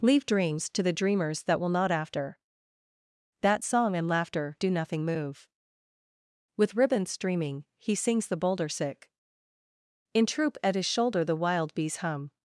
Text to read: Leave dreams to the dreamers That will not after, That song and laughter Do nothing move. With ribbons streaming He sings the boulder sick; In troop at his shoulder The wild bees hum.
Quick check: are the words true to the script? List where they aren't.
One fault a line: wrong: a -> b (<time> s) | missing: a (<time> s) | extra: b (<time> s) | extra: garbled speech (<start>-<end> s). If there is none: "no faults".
no faults